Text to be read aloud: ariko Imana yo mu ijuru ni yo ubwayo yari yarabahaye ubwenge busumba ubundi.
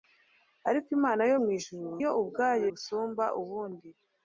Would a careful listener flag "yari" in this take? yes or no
yes